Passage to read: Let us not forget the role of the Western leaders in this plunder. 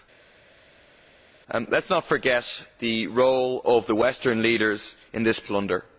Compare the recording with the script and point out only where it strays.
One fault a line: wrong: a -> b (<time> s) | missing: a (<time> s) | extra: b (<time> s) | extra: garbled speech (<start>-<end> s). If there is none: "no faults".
no faults